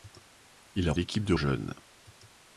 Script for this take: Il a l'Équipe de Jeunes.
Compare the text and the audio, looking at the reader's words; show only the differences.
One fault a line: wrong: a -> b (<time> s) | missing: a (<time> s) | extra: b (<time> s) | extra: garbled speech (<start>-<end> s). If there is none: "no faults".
no faults